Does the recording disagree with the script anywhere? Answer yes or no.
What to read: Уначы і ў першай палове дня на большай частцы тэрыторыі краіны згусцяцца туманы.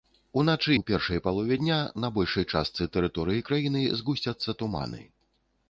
yes